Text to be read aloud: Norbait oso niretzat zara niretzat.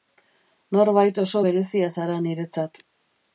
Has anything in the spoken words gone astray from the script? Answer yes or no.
yes